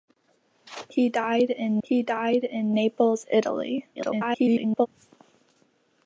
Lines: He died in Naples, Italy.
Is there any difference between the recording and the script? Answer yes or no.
yes